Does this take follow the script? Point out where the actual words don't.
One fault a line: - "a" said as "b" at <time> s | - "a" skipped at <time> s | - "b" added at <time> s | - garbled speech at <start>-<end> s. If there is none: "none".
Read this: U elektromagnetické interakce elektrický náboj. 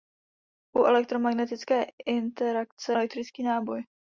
none